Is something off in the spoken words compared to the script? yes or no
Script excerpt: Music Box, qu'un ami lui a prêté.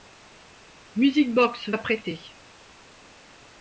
yes